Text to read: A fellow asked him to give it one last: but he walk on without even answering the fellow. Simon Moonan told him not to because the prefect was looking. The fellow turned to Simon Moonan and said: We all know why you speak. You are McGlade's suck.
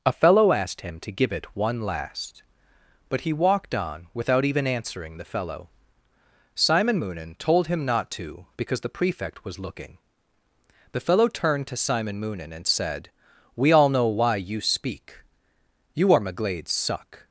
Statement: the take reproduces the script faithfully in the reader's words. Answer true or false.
false